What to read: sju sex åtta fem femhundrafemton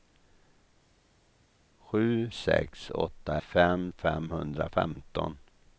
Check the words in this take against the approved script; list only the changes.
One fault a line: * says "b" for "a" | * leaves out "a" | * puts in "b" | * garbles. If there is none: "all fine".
all fine